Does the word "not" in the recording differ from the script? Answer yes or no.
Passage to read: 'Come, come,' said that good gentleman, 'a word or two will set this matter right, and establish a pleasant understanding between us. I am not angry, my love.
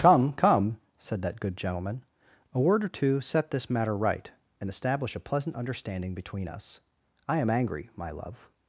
yes